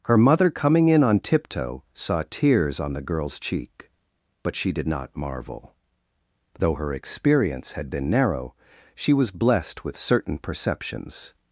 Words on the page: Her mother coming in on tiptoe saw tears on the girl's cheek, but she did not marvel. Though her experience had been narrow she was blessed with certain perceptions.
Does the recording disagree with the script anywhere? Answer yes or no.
no